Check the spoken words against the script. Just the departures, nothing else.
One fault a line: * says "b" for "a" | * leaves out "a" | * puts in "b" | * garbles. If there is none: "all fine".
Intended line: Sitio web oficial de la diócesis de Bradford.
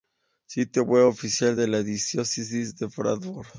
all fine